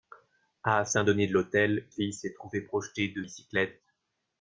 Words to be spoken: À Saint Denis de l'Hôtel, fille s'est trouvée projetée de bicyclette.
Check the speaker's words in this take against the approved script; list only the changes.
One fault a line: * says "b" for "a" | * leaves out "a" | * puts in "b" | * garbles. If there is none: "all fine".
all fine